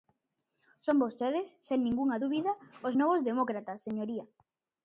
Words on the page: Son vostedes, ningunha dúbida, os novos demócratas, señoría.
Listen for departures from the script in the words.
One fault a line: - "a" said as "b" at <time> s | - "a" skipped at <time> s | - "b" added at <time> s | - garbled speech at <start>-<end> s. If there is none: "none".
- "sen" added at 1.7 s